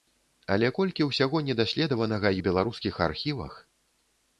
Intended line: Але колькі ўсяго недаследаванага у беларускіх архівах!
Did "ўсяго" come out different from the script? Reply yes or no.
no